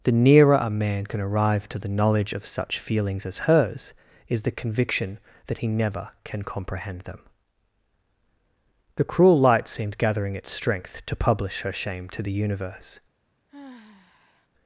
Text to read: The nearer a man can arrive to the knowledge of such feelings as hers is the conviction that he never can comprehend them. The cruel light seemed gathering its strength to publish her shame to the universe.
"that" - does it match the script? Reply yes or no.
yes